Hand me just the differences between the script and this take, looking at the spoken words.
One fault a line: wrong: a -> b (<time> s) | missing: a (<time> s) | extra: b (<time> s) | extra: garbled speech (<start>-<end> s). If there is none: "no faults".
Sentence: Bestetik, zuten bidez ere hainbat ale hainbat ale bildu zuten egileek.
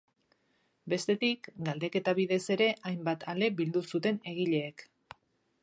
wrong: zuten -> galdeketa (1.7 s)
missing: hainbat ale (3.5 s)